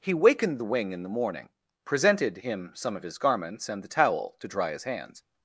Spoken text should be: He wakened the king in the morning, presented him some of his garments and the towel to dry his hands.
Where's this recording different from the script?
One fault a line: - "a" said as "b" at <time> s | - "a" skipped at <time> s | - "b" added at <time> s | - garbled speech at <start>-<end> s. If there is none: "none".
- "king" said as "wing" at 0.6 s